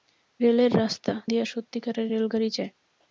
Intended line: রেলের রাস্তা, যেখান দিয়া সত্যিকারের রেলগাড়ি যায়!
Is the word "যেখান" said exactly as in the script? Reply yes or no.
no